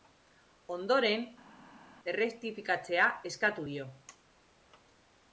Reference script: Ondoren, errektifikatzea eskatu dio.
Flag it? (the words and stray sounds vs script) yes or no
no